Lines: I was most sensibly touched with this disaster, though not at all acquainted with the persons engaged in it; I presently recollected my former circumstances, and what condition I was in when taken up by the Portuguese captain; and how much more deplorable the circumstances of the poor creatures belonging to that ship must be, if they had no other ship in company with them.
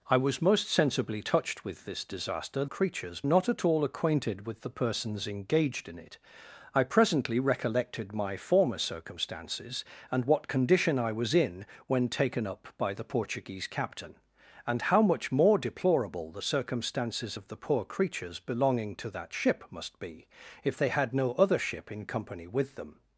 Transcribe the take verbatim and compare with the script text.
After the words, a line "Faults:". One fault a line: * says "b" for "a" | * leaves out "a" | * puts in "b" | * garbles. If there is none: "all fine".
I was most sensibly touched with this disaster, creatures not at all acquainted with the persons engaged in it; I presently recollected my former circumstances, and what condition I was in when taken up by the Portuguese captain; and how much more deplorable the circumstances of the poor creatures belonging to that ship must be, if they had no other ship in company with them.
Faults:
* says "creatures" for "though"